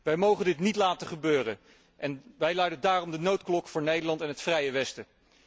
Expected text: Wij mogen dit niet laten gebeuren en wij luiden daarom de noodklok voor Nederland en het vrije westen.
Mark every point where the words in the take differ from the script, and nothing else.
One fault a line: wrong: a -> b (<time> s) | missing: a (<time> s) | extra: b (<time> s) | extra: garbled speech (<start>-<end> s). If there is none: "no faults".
no faults